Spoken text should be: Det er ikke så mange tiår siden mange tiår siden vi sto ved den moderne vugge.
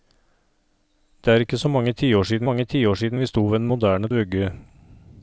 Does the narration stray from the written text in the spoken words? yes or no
no